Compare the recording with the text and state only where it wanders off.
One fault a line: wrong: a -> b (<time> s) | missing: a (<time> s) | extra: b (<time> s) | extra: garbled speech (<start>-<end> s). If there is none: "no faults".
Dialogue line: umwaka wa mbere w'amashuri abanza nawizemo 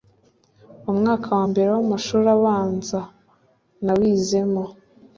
no faults